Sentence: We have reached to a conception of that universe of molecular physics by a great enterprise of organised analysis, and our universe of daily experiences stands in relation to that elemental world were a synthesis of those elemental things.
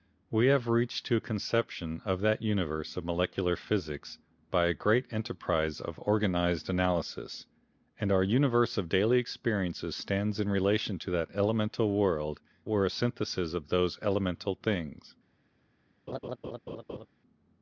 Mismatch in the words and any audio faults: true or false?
true